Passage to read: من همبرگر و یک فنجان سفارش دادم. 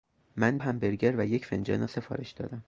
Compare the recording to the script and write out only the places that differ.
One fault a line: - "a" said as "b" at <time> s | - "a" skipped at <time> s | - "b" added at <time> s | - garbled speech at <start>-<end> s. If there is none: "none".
none